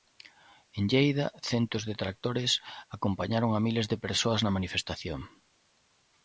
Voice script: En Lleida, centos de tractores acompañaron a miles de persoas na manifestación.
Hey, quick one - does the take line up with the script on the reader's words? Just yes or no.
yes